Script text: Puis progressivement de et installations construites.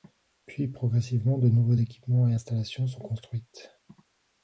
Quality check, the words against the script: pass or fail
fail